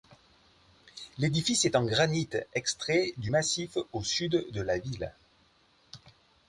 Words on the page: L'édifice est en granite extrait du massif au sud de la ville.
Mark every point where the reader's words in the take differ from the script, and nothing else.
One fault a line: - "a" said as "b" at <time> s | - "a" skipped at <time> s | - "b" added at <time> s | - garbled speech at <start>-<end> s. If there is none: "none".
none